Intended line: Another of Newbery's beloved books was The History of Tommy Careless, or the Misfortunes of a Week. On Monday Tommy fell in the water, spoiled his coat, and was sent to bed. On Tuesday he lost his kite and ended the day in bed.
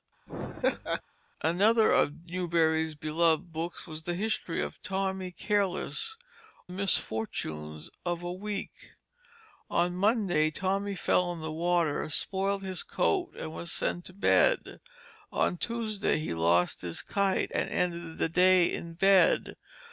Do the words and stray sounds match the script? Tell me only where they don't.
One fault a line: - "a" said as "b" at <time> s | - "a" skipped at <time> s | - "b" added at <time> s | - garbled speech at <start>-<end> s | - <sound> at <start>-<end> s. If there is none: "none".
- laugh at 0.3-1.0 s
- "or the" skipped at 6.2 s